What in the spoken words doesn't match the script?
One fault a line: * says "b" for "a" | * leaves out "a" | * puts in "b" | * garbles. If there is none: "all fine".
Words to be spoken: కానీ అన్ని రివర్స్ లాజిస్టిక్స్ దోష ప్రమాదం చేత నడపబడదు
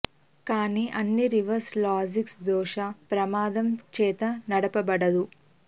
all fine